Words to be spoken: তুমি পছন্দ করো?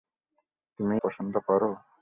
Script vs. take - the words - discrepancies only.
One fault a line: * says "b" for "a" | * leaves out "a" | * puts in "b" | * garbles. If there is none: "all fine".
all fine